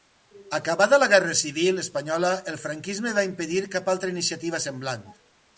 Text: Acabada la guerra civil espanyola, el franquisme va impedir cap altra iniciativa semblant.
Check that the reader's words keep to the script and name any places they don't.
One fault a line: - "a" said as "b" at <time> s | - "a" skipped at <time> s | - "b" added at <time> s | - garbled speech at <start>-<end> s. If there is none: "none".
none